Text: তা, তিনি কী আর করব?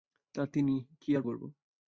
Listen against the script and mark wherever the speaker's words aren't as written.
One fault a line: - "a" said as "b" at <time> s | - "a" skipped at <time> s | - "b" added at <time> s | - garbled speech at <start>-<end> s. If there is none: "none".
none